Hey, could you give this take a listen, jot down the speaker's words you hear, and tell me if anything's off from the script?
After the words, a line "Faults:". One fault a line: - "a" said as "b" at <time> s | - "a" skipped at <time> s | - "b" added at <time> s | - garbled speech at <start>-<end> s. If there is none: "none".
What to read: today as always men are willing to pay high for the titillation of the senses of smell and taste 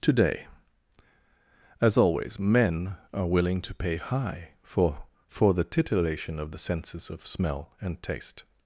today as always men are willing to pay high for for the titillation of the senses of smell and taste
Faults:
- "for" added at 5.3 s